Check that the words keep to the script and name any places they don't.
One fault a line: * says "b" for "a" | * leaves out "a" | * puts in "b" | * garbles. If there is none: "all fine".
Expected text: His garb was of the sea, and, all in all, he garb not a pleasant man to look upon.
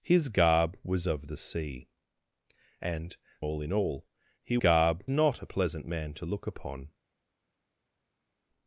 all fine